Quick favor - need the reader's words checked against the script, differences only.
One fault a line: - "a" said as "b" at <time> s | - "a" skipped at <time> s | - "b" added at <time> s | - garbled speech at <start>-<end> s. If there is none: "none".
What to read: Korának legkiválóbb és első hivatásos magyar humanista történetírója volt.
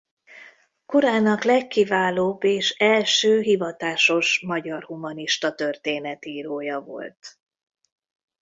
none